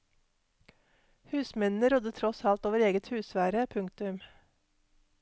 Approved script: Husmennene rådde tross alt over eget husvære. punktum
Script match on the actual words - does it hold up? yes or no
yes